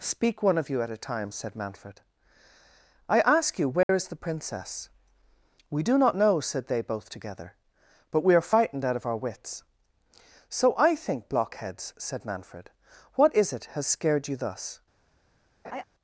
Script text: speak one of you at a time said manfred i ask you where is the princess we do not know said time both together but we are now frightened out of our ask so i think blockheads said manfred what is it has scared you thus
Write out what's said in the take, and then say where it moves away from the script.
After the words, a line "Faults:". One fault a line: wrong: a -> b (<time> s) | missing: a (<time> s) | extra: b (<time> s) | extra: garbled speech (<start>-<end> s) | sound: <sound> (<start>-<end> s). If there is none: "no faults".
speak one of you at a time said manfred i ask you where is the princess we do not know said they both together but we are frightened out of our wits so i think blockheads said manfred what is it has scared you thus
Faults:
sound: dropout (3.8-3.9 s)
wrong: time -> they (6.7 s)
missing: now (8.5 s)
wrong: ask -> wits (9.2 s)
sound: laugh (15.6-15.8 s)